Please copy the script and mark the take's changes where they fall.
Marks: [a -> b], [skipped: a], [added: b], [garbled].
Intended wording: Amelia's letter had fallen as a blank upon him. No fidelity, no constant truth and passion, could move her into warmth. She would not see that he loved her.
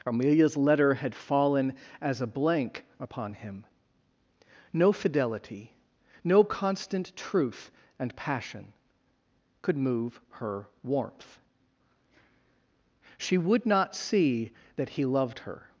Amelia's letter had fallen as a blank upon him. No fidelity, no constant truth and passion, could move her [skipped: into] warmth. She would not see that he loved her.